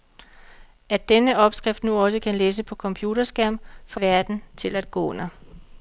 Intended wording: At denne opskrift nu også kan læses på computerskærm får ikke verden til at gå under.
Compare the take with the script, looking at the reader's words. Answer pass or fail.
fail